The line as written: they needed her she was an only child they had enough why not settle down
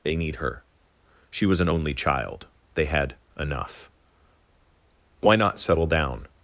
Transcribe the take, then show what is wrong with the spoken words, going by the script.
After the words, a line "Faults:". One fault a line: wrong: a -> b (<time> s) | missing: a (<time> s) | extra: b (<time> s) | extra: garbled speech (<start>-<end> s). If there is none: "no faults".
they need her she was an only child they had enough why not settle down
Faults:
wrong: needed -> need (0.1 s)